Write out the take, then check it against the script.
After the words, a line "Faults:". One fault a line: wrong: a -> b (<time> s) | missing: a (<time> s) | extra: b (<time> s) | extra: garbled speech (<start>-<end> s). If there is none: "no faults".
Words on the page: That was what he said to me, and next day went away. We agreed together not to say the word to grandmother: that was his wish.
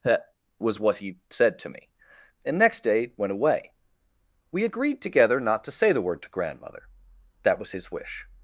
That was what he said to me, and next day went away. We agreed together not to say the word to grandmother: that was his wish.
Faults:
no faults